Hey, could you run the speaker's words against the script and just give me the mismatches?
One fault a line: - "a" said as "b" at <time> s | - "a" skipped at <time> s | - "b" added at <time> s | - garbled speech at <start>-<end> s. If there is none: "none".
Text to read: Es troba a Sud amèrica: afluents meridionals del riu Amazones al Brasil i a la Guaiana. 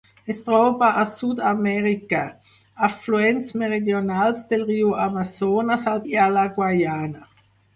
- "Brasil" skipped at 6.0 s